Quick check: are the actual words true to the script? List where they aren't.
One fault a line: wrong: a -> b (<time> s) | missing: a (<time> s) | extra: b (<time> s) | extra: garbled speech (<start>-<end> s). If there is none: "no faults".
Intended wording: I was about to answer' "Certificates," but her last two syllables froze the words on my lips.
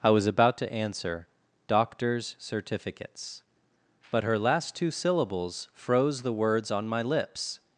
extra: Doctors (1.7 s)